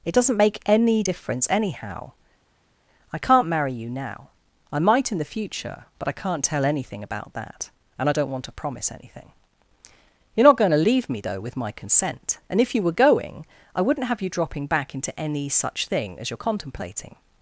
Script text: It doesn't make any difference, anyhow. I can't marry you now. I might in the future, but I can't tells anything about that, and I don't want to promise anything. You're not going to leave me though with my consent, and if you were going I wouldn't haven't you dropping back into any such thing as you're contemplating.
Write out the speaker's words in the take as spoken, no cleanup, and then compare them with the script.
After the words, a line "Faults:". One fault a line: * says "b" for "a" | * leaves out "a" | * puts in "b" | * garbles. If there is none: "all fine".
It doesn't make any difference, anyhow. I can't marry you now. I might in the future, but I can't tell anything about that, and I don't want to promise anything. You're not going to leave me though with my consent, and if you were going I wouldn't have you dropping back into any such thing as you're contemplating.
Faults:
* says "tell" for "tells"
* says "have" for "haven't"